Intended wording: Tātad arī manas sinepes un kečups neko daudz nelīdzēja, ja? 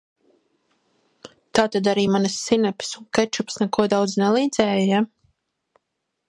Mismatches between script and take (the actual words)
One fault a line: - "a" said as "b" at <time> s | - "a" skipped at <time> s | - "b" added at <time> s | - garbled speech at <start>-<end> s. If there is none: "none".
none